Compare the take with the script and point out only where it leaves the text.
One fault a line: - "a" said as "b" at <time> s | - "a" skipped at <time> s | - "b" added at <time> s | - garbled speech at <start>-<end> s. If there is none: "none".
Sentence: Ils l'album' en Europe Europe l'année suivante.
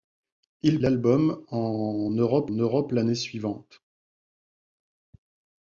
none